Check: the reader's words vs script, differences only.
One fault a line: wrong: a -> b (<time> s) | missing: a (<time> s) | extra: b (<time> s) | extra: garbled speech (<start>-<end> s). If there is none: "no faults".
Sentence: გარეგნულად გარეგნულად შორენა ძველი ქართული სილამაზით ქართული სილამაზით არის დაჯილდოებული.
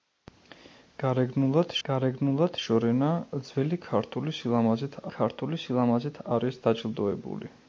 no faults